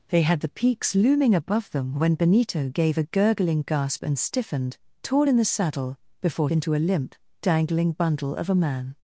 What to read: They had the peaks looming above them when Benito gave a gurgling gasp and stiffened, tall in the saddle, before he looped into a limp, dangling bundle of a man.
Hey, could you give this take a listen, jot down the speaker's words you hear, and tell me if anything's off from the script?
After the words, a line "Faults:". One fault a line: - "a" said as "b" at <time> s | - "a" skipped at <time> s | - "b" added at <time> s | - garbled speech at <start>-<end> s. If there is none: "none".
They had the peaks looming above them when Benito gave a gurgling gasp and stiffened, tall in the saddle, before into a limp, dangling bundle of a man.
Faults:
- "he looped" skipped at 6.5 s